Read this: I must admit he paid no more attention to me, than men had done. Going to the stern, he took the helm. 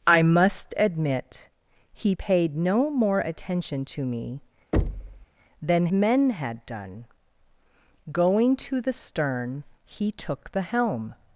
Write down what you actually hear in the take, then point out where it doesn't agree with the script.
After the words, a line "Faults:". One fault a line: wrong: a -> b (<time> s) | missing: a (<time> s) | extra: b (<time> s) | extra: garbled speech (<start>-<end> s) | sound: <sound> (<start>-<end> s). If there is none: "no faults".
I must admit he paid no more attention to me, than men had done. Going to the stern, he took the helm.
Faults:
sound: thud (4.7-5.3 s)